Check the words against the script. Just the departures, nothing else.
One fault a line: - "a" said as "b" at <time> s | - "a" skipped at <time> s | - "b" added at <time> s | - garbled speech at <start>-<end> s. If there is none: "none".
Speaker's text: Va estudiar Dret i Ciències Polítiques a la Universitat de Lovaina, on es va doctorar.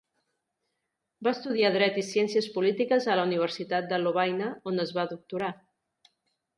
none